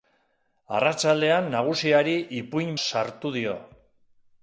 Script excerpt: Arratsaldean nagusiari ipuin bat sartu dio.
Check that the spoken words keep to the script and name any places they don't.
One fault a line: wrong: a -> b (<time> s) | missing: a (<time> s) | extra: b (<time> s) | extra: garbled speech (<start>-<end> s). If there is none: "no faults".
missing: bat (2.7 s)